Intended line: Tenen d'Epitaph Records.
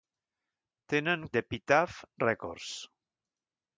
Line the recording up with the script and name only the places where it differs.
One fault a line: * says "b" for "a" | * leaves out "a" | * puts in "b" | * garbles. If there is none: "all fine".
all fine